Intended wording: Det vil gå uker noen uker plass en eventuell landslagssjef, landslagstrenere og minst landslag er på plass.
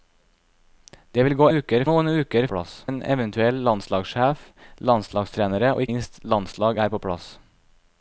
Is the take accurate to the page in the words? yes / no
yes